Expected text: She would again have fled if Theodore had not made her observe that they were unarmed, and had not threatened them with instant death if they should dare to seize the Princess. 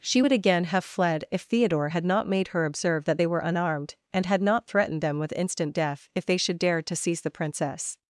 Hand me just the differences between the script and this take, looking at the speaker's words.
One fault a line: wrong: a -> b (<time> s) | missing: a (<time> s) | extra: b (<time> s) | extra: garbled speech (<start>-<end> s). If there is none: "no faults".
no faults